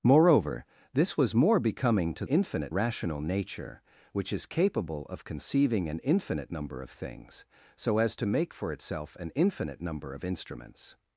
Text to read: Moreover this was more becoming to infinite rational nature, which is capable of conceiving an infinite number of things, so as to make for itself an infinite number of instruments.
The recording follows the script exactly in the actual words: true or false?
true